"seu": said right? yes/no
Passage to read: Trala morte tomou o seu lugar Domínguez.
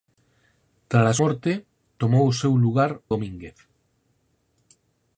yes